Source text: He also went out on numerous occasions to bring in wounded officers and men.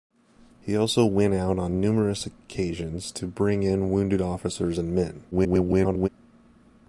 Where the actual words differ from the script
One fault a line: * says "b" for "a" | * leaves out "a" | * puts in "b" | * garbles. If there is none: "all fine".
* garbles